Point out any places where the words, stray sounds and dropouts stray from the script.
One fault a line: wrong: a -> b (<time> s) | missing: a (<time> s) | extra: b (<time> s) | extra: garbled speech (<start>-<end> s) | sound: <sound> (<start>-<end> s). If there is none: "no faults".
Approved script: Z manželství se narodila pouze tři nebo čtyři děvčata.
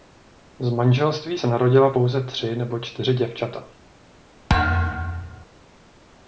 sound: thud (4.5-5.5 s)